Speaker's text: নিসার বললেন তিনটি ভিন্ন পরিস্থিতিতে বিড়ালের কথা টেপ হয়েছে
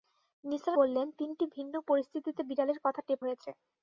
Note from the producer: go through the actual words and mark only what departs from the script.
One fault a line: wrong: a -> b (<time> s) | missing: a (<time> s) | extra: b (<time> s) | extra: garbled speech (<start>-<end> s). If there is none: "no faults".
no faults